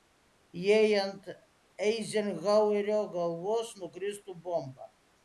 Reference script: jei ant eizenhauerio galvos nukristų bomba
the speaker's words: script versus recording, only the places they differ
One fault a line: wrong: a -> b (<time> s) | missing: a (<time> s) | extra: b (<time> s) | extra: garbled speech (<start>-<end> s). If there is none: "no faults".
no faults